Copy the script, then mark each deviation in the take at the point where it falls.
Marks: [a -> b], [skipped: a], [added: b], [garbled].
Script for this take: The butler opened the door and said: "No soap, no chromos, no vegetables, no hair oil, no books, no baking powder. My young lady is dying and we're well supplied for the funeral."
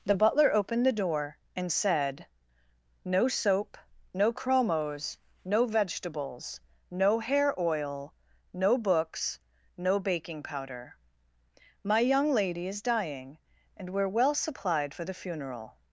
The butler opened the door and said: "No soap, no chromos, no vegetables, no hair oil, no books, no baking powder. My young lady is dying and we're well supplied for the funeral."